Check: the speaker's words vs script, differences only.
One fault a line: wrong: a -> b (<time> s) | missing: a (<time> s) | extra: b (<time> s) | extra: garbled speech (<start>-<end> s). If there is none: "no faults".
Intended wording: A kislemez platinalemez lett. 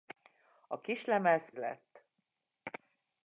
missing: platinalemez (1.5 s)